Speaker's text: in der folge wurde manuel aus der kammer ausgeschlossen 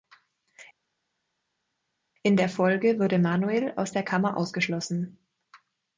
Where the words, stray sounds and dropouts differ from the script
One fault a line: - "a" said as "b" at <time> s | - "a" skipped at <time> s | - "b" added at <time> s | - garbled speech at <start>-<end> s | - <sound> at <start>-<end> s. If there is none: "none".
none